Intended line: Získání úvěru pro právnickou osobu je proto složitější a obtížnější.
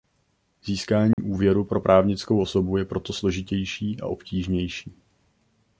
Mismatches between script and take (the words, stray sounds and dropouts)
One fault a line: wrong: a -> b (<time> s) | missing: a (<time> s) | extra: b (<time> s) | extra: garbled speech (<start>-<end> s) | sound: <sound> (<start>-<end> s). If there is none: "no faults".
sound: dropout (1.1-1.2 s)